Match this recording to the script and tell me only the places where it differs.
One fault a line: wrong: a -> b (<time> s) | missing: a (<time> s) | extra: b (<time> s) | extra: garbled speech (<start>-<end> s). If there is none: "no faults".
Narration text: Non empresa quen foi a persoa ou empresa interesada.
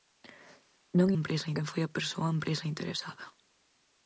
no faults